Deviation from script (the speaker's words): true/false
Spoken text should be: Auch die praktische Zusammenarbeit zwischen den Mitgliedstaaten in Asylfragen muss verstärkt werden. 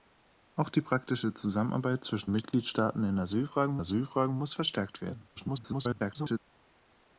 true